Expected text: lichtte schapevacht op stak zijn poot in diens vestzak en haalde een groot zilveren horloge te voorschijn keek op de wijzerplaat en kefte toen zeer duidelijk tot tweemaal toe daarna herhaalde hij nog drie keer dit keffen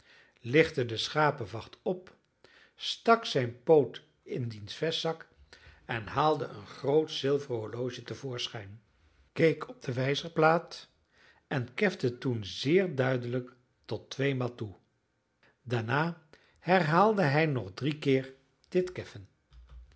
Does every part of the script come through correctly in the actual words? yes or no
no